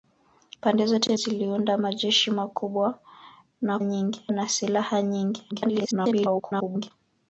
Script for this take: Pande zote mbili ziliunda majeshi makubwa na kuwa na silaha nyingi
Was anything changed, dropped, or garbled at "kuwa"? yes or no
yes